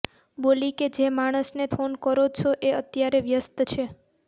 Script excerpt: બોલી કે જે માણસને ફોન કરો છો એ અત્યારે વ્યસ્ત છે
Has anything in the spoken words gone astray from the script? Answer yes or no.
no